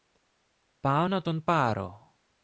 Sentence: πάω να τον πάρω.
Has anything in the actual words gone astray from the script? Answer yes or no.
no